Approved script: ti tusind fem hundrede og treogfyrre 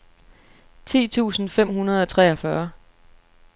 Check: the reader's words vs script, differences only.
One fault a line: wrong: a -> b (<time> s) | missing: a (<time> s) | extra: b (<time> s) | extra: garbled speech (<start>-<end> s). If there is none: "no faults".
no faults